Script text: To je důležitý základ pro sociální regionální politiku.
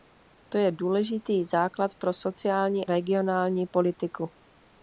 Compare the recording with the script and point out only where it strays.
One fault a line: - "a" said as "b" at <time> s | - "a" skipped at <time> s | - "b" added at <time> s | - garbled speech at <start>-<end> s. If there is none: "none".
none